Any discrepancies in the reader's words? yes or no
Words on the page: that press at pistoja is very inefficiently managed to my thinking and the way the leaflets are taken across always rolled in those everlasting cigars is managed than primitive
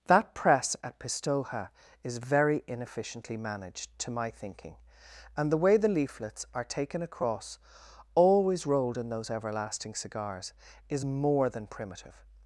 yes